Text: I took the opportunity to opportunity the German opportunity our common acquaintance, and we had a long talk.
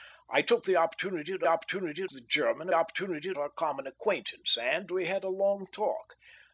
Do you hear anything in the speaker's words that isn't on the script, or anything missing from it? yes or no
no